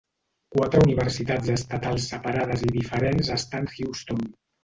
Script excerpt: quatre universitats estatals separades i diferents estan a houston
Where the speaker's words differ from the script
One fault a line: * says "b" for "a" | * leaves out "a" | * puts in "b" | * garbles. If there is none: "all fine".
all fine